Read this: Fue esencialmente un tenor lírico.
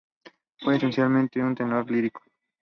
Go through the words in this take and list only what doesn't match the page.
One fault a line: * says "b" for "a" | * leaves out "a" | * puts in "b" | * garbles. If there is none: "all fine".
all fine